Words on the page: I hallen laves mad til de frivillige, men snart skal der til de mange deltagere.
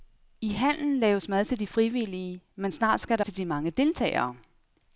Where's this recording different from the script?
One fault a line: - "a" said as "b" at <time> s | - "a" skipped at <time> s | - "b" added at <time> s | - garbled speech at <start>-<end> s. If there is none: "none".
none